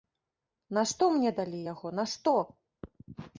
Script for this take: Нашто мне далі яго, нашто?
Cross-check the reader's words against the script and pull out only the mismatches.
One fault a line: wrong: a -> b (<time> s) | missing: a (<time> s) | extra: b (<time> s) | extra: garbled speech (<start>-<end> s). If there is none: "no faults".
no faults